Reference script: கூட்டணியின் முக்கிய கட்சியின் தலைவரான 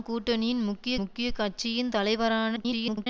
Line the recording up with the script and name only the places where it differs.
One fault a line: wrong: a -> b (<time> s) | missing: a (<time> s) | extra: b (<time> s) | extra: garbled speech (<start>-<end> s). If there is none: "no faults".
extra: முக்கிய (0.9 s)
extra: garbled speech (2.6-3.1 s)